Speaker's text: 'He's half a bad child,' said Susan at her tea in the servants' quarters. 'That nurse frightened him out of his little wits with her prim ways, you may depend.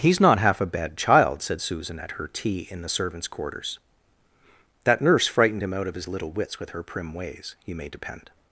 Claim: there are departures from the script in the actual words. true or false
true